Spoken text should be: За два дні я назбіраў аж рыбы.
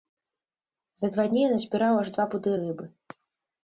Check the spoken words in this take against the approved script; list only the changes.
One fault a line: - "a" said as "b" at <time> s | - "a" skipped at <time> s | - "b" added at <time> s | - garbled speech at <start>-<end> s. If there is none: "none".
- "два пуды" added at 2.2 s